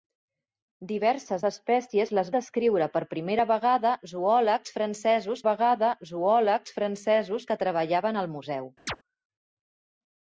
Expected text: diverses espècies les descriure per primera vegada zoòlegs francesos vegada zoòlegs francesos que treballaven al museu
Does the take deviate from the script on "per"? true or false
false